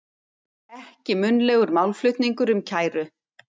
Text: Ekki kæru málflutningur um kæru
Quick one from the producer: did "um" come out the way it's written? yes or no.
yes